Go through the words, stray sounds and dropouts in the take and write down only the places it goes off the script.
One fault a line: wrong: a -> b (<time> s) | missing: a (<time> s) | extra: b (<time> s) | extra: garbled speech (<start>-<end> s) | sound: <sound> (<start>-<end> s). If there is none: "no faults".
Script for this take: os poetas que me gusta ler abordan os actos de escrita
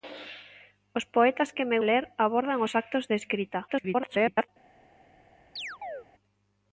missing: gusta (1.8 s)
extra: garbled speech (3.7-4.5 s)
sound: chirp (5.6-6.1 s)